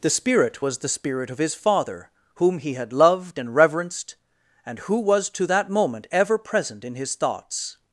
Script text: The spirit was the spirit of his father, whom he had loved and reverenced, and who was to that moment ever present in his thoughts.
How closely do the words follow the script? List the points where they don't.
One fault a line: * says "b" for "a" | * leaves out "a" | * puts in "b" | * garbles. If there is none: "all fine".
all fine